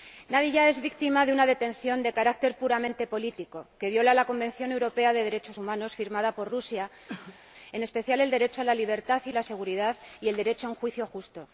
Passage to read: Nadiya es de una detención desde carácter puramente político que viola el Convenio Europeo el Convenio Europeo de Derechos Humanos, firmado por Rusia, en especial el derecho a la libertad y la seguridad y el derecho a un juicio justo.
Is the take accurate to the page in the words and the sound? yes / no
no